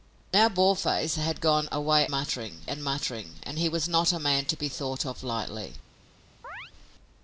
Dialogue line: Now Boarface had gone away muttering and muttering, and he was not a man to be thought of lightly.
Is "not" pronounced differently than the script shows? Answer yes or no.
no